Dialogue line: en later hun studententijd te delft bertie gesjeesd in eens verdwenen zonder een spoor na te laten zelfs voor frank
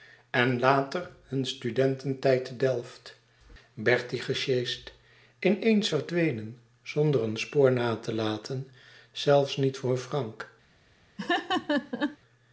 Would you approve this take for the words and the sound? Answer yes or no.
no